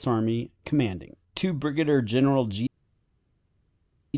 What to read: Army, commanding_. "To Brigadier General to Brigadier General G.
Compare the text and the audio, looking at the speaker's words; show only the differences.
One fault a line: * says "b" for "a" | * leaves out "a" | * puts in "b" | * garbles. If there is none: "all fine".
* leaves out "to Brigadier General"